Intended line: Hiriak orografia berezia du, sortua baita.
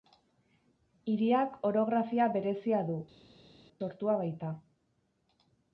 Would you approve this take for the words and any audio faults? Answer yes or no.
yes